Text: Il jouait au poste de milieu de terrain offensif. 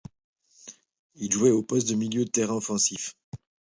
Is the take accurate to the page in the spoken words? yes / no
yes